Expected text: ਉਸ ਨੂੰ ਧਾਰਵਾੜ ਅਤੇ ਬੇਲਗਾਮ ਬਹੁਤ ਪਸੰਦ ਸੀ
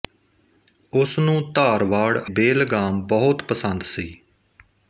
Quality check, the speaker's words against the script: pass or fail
fail